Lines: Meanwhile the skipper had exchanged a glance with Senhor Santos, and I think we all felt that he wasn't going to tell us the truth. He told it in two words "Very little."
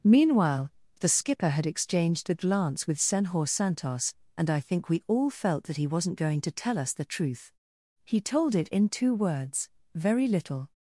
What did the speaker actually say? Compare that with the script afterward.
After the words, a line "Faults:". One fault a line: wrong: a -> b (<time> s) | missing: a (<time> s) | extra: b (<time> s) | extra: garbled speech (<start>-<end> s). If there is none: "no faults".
Meanwhile the skipper had exchanged a glance with Senhor Santos, and I think we all felt that he wasn't going to tell us the truth. He told it in two words "Very little."
Faults:
no faults